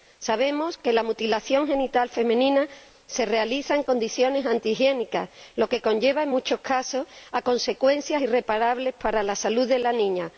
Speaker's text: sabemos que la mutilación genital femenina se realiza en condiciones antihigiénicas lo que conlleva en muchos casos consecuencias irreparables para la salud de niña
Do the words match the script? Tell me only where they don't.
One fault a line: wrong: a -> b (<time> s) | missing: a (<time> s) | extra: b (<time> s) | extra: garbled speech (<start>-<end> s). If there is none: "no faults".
extra: la (9.8 s)